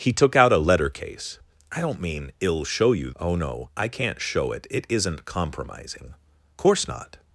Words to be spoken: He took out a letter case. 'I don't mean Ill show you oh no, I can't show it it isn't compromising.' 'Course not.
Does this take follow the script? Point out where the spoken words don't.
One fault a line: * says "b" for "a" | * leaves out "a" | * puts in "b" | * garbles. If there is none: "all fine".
all fine